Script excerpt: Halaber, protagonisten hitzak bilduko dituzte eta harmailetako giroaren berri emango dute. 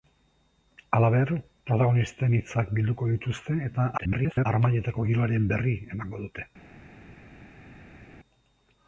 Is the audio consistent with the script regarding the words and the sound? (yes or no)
no